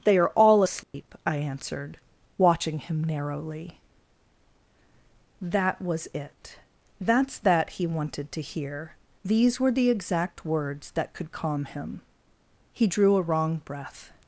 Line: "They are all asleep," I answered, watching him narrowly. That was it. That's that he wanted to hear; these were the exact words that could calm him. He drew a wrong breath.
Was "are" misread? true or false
false